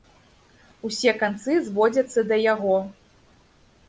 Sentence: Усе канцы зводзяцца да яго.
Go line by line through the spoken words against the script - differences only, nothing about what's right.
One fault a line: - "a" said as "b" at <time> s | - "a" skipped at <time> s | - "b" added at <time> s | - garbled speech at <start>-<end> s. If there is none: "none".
none